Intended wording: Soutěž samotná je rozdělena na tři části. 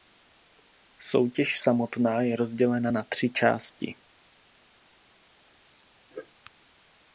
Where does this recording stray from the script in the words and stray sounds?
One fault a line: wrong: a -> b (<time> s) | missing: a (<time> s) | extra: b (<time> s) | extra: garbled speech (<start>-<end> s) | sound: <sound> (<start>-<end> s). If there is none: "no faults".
no faults